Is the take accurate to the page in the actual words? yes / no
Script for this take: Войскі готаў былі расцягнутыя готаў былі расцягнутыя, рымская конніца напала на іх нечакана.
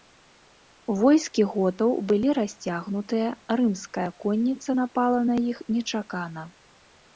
no